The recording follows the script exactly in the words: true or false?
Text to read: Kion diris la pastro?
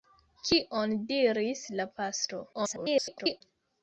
false